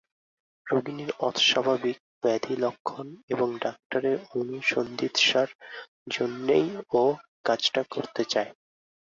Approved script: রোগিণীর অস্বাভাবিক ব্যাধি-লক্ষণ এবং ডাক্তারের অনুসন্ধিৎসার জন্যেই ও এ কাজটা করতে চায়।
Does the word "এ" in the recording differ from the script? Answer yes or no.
yes